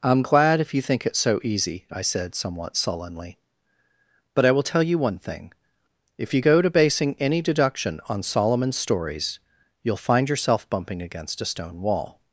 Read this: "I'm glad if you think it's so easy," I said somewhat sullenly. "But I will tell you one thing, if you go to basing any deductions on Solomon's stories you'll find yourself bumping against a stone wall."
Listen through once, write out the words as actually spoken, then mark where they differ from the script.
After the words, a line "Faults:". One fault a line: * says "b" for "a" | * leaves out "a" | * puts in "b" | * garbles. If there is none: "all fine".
"I'm glad if you think it's so easy," I said somewhat sullenly. "But I will tell you one thing, if you go to basing any deduction on Solomon's stories you'll find yourself bumping against a stone wall."
Faults:
* says "deduction" for "deductions"